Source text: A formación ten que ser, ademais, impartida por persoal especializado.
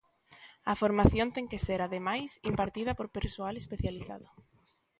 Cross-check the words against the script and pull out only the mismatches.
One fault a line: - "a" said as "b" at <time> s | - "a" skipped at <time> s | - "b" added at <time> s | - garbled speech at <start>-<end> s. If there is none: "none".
none